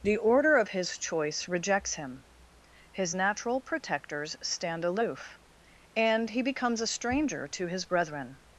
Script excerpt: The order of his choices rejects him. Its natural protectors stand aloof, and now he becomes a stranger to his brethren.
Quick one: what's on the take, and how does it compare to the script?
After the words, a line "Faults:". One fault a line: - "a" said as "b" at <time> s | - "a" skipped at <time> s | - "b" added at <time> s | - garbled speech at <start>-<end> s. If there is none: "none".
The order of his choice rejects him. His natural protectors stand aloof, and he becomes a stranger to his brethren.
Faults:
- "choices" said as "choice" at 1.0 s
- "Its" said as "His" at 2.9 s
- "now" skipped at 6.3 s